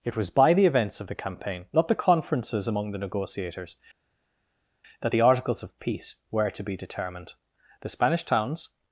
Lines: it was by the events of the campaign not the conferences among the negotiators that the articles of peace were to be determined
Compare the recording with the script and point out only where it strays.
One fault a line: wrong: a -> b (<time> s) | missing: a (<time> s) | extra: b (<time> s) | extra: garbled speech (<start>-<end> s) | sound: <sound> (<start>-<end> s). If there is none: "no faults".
extra: the spanish towns (7.8 s)